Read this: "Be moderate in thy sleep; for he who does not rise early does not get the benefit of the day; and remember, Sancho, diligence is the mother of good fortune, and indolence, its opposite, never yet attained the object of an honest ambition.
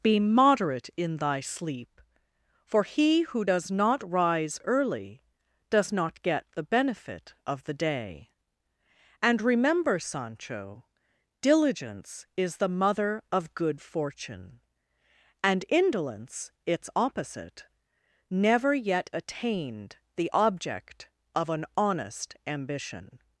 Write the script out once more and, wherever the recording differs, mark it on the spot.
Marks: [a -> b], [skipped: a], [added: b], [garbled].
"Be moderate in thy sleep; for he who does not rise early does not get the benefit of the day; and remember, Sancho, diligence is the mother of good fortune, and indolence, its opposite, never yet attained the object of an honest ambition.